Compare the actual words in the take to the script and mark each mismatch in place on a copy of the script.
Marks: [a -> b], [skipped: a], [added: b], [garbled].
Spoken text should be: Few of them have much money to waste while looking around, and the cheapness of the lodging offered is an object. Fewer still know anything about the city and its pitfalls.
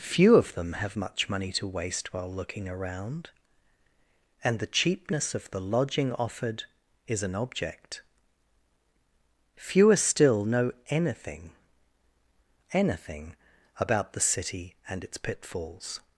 Few of them have much money to waste while looking around, and the cheapness of the lodging offered is an object. Fewer still know anything [added: anything] about the city and its pitfalls.